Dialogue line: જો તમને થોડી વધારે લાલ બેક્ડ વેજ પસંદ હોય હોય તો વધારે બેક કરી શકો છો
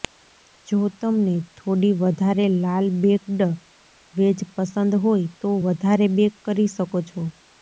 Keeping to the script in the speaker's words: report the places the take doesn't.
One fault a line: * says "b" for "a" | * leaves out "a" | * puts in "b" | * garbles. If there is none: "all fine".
* leaves out "હોય"